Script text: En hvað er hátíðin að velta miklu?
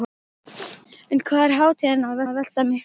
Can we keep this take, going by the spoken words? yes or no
no